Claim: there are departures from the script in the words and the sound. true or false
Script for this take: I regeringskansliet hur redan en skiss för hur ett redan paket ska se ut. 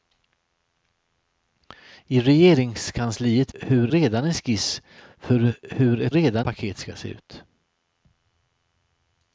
false